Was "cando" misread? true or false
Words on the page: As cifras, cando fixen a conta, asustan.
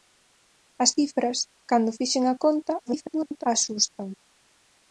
false